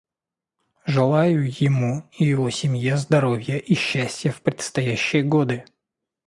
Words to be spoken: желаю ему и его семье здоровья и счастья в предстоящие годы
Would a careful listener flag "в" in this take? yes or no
no